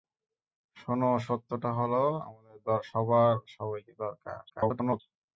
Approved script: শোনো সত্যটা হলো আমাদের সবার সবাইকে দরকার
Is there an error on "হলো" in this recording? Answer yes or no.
no